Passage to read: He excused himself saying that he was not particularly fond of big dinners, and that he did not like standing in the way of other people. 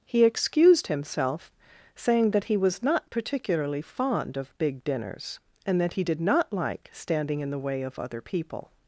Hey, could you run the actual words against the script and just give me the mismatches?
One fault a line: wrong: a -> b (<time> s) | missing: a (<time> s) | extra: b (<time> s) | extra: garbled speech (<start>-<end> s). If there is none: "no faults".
no faults